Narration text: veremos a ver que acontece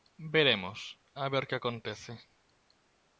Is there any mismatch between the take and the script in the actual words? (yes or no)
no